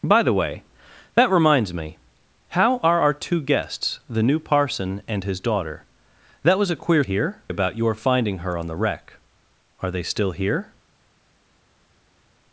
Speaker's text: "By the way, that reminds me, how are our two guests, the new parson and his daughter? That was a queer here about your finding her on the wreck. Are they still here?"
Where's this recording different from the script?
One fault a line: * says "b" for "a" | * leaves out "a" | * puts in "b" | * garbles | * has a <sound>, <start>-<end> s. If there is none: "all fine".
all fine